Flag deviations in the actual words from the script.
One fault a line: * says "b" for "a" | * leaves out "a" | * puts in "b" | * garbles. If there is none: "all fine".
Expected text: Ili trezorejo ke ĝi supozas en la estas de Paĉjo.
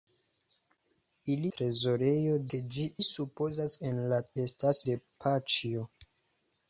all fine